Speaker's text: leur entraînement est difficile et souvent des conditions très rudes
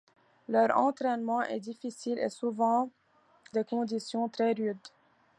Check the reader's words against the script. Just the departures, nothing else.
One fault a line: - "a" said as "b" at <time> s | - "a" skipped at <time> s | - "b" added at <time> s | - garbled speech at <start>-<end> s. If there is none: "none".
none